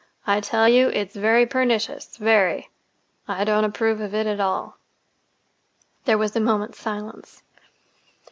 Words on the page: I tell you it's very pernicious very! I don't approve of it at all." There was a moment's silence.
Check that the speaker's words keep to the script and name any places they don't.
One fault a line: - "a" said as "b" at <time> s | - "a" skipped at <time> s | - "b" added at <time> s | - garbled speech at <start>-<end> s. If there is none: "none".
none